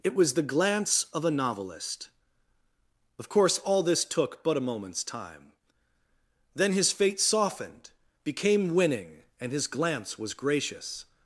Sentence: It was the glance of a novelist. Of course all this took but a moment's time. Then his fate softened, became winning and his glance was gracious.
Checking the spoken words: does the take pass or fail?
pass